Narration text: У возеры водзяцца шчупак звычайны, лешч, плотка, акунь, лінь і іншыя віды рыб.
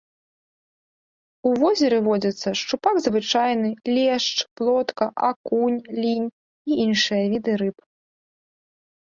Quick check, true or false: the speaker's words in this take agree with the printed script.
true